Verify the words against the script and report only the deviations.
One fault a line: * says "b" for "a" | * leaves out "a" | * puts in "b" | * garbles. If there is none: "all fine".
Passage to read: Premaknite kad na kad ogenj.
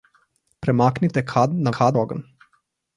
all fine